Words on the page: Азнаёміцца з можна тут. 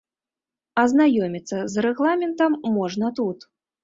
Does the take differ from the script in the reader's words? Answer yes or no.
yes